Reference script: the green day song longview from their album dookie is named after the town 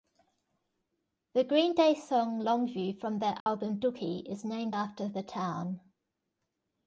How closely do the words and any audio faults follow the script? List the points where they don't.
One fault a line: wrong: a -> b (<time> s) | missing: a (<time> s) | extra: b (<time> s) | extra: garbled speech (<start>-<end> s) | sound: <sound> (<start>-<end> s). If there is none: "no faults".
sound: dropout (3.4-3.5 s)